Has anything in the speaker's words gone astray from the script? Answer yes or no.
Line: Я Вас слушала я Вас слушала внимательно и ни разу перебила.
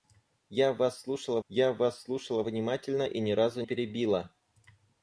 no